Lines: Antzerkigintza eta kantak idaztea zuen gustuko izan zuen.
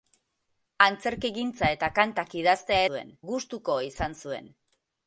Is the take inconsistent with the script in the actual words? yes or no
no